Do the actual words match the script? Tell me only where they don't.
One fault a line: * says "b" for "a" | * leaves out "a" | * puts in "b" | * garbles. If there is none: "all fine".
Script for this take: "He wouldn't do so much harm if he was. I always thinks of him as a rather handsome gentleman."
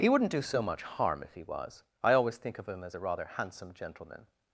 * says "think" for "thinks"